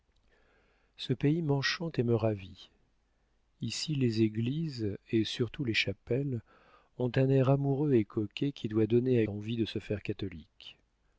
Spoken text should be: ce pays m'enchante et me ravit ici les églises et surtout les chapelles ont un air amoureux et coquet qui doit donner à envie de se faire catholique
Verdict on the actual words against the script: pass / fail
pass